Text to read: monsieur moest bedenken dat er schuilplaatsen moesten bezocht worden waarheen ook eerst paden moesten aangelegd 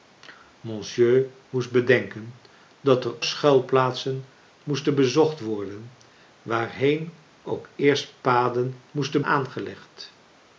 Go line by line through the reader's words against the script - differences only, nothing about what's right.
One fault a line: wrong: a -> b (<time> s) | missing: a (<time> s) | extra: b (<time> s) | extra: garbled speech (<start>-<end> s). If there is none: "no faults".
no faults